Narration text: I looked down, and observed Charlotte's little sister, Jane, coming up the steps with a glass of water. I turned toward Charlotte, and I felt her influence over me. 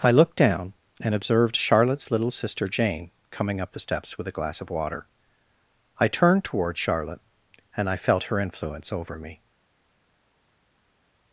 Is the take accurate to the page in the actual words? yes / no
yes